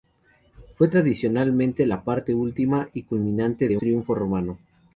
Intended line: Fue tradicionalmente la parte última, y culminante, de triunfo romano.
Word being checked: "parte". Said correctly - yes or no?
yes